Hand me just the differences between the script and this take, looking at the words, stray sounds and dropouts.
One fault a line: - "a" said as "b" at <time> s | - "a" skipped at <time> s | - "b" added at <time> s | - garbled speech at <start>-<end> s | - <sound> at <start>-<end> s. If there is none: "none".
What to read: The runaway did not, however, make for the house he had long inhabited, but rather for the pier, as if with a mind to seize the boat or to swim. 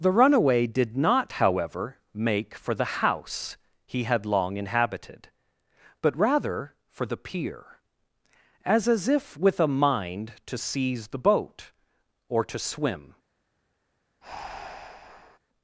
- "as" added at 8.9 s
- breath at 14.2-15.4 s